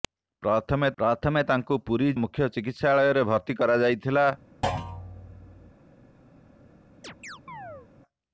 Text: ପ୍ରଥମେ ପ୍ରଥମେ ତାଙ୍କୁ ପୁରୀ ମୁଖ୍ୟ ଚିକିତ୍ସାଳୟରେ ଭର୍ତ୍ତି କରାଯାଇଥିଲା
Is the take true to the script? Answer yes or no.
yes